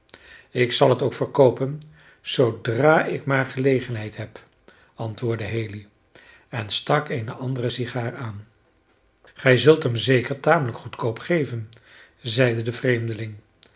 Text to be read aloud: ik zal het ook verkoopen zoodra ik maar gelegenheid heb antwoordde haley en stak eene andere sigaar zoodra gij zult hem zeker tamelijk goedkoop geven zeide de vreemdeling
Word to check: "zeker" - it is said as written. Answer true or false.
true